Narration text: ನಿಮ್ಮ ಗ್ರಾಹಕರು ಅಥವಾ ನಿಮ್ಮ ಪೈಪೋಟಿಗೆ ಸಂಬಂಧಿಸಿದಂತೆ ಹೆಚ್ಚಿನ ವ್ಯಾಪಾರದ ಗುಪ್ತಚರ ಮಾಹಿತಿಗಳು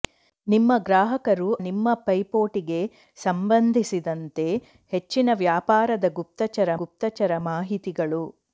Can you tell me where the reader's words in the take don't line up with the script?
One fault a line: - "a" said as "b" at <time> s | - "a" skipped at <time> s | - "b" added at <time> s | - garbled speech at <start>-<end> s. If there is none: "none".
- "ಅಥವಾ" skipped at 1.5 s
- "ಗುಪ್ತಚರ" added at 6.8 s